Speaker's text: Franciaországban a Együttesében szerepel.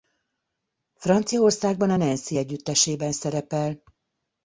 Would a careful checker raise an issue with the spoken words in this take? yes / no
yes